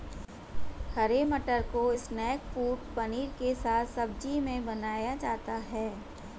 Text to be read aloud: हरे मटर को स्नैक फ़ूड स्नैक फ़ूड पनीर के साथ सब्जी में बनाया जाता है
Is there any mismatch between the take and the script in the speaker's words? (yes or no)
yes